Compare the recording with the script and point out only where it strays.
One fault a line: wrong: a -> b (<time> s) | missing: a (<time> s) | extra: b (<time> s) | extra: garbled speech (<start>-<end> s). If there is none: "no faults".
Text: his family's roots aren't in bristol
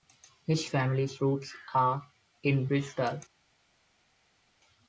wrong: aren't -> are (1.7 s)